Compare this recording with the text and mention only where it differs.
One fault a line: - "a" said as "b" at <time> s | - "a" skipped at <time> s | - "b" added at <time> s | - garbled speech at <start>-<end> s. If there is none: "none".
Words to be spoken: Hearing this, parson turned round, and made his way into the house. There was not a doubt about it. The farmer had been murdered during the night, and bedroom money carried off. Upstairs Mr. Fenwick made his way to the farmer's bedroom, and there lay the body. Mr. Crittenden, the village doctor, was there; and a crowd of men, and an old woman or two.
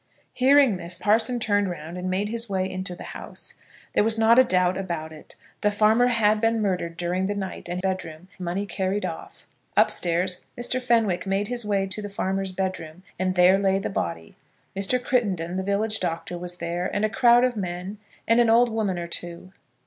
none